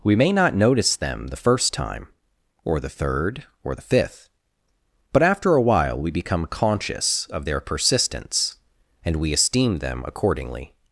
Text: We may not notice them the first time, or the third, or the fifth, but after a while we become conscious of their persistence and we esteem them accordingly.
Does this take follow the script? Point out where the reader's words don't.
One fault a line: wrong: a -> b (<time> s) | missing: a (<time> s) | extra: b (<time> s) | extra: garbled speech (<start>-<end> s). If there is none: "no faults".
no faults